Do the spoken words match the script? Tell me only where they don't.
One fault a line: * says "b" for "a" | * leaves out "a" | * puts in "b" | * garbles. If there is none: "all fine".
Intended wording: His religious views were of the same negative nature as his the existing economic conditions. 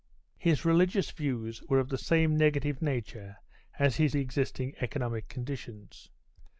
all fine